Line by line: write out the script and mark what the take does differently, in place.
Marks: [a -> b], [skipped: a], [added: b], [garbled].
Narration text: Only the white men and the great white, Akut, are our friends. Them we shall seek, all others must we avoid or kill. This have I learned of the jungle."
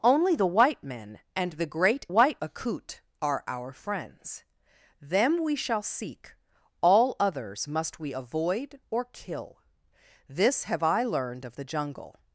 Only the white men and the great white, Akut, are our friends. Them we shall seek, all others must we avoid or kill. This have I learned of the jungle."